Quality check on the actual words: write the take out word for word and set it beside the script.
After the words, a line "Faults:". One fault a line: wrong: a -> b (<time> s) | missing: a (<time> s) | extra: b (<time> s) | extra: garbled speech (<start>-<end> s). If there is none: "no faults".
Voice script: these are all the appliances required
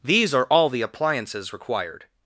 these are all the appliances required
Faults:
no faults